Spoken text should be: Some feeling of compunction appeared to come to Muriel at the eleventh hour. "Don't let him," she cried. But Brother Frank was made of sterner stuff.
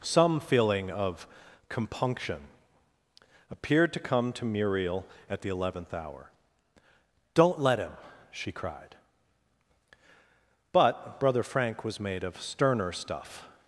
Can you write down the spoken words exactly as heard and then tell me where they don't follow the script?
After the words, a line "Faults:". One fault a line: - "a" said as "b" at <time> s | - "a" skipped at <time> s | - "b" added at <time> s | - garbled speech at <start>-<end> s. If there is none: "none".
Some feeling of compunction appeared to come to Muriel at the eleventh hour. "Don't let him," she cried. But Brother Frank was made of sterner stuff.
Faults:
none